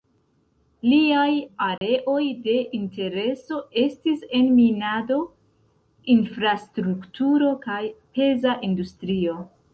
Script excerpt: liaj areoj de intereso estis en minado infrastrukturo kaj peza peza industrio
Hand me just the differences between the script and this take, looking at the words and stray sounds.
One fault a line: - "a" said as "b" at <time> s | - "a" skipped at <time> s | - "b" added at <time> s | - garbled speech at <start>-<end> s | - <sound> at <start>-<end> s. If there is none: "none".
- dropout at 1.8-1.8 s
- "peza" skipped at 8.6 s